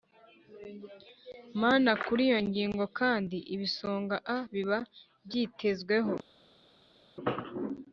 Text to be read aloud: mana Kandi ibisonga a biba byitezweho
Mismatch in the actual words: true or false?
true